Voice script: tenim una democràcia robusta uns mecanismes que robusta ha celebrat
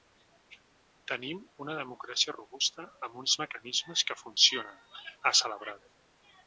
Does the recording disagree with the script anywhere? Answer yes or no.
yes